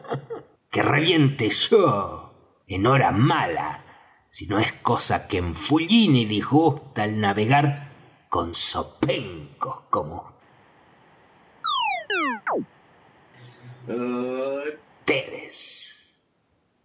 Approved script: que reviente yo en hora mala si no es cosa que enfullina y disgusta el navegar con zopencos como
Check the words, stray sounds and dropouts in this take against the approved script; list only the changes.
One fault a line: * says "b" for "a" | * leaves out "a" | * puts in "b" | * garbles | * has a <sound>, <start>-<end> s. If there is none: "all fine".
* has a chirp, 11.6-12.7 s
* has a sneeze, 13.3-14.9 s